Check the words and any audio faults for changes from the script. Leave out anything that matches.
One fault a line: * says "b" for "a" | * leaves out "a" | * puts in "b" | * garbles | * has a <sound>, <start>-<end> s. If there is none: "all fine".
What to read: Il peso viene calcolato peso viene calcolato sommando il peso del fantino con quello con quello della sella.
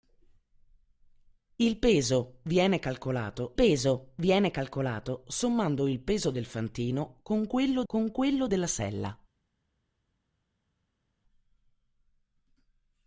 all fine